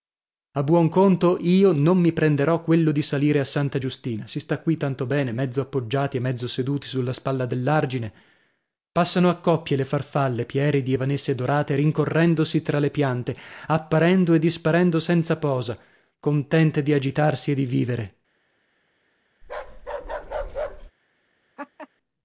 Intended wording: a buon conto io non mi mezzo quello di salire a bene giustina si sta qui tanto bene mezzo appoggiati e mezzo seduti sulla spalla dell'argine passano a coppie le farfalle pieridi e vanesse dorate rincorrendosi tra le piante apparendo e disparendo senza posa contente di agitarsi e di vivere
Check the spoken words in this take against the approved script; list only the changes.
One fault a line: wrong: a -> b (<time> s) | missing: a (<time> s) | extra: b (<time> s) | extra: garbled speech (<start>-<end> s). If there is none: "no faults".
wrong: mezzo -> prenderò (2.1 s)
wrong: bene -> santa (3.4 s)